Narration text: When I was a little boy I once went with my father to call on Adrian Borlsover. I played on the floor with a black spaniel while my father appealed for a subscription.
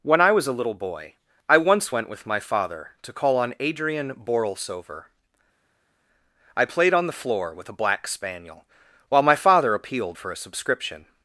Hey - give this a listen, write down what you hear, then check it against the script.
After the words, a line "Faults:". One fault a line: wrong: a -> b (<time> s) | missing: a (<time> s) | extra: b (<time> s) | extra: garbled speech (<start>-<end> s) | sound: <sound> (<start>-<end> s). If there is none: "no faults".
When I was a little boy I once went with my father to call on Adrian Borlsover. I played on the floor with a black spaniel while my father appealed for a subscription.
Faults:
no faults